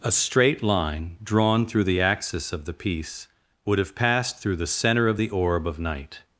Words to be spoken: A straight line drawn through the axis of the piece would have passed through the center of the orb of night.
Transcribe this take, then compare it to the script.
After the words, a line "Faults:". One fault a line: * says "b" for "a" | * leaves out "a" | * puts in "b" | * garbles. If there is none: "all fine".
A straight line drawn through the axis of the piece would have passed through the center of the orb of night.
Faults:
all fine